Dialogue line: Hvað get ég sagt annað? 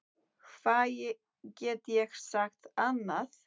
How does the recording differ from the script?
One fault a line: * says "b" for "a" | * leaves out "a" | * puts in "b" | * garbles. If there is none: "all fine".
all fine